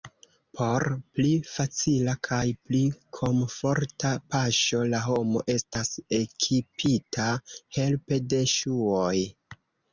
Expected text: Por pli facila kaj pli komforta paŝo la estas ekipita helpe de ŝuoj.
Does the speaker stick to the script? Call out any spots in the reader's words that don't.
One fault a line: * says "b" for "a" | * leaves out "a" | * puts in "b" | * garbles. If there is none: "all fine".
* puts in "homo"